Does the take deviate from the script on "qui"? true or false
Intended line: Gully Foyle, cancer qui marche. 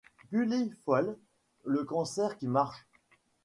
false